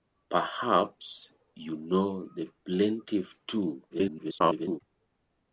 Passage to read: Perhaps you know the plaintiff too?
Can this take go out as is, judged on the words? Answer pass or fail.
fail